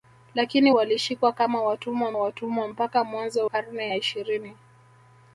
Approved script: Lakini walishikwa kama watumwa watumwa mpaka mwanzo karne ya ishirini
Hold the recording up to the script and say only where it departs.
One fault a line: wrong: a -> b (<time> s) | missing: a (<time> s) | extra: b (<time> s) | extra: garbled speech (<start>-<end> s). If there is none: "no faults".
no faults